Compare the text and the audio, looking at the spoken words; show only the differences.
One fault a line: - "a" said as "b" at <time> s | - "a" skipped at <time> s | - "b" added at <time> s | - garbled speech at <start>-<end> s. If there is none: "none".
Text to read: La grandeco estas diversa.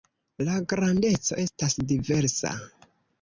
none